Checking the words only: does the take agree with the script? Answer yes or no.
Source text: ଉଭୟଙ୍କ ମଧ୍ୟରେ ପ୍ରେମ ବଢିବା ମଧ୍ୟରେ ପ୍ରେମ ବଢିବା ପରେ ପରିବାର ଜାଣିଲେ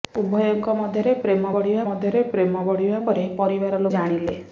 yes